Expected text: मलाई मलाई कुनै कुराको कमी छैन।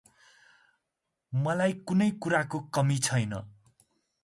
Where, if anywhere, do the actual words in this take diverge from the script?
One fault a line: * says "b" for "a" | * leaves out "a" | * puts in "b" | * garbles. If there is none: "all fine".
* leaves out "मलाई"